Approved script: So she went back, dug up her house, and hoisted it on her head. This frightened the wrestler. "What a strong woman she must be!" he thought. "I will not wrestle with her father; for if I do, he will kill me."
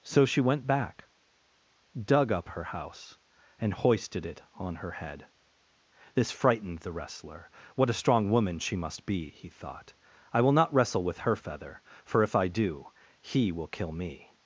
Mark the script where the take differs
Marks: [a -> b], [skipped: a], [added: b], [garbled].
So she went back, dug up her house, and hoisted it on her head. This frightened the wrestler. "What a strong woman she must be!" he thought. "I will not wrestle with her [father; -> feather] for if I do, he will kill me."